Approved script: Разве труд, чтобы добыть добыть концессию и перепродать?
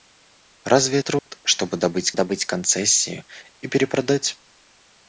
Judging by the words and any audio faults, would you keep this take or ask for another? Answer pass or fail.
fail